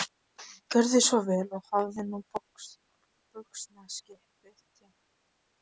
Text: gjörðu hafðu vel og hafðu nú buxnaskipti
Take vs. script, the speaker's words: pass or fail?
fail